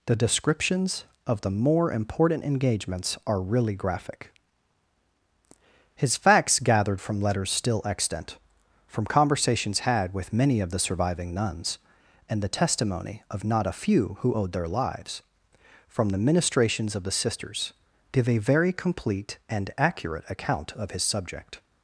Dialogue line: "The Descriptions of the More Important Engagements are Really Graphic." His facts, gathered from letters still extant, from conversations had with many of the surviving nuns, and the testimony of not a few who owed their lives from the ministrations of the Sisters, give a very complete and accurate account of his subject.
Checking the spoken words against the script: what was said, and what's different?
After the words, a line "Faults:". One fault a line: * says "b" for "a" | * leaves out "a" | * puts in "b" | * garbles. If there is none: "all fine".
"The Descriptions of the More Important Engagements are Really Graphic." His facts, gathered from letters still extant, from conversations had with many of the surviving nuns, and the testimony of not a few who owed their lives from the ministrations of the Sisters, give a very complete and accurate account of his subject.
Faults:
all fine